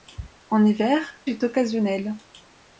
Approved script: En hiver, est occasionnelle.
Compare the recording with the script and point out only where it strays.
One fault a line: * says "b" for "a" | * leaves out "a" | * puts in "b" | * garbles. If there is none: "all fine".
all fine